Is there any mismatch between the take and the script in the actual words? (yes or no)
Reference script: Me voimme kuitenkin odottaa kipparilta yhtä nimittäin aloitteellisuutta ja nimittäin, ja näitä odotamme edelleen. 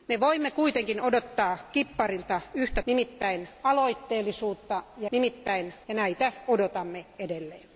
no